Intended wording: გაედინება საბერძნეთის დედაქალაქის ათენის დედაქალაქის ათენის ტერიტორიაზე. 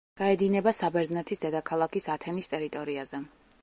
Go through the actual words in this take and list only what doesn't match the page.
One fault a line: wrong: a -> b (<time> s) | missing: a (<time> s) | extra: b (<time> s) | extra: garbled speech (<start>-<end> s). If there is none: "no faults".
missing: დედაქალაქის ათენის (2.5 s)